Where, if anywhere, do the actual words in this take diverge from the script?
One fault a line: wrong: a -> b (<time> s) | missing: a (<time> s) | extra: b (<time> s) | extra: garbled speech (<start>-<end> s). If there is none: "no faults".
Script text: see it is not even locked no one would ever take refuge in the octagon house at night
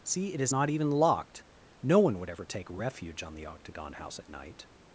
wrong: in -> on (3.2 s)